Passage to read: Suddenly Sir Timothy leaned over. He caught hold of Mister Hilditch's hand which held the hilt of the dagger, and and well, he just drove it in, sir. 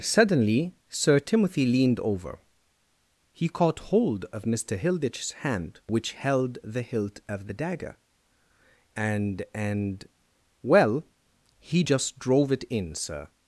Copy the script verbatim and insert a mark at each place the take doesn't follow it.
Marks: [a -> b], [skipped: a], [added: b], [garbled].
Suddenly Sir Timothy leaned over. He caught hold of Mister Hilditch's hand which held the hilt of the dagger, and and well, he just drove it in, sir.